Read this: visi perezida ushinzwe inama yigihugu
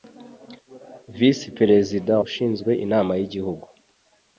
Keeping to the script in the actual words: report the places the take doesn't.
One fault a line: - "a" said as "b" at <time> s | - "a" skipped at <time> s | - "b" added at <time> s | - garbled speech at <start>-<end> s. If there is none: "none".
none